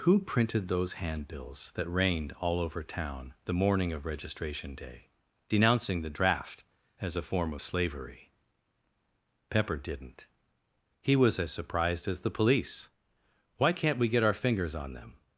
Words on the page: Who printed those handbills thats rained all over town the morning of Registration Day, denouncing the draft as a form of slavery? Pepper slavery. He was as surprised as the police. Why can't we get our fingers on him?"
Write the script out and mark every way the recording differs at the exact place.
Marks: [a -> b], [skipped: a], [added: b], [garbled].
Who printed those handbills [thats -> that] rained all over town the morning of Registration Day, denouncing the draft as a form of slavery? Pepper [slavery. -> didn't] He was as surprised as the police. Why can't we get our fingers on [him?" -> them]